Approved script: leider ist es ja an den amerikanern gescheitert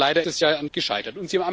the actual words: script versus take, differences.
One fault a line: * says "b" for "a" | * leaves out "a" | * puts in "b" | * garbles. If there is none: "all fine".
* leaves out "ist"
* leaves out "den amerikanern"